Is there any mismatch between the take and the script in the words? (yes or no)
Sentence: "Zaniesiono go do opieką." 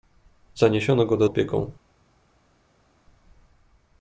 no